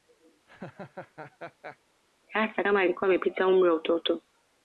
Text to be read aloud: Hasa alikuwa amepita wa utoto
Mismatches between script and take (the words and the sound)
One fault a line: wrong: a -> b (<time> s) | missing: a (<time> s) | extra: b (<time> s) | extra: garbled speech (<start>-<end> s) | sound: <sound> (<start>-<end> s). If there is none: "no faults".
sound: laugh (0.5-1.8 s)
extra: kama (2.6 s)
extra: umri (3.5 s)